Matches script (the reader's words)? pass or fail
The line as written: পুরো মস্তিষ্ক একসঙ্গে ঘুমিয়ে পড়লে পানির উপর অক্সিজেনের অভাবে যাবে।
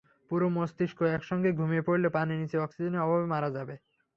fail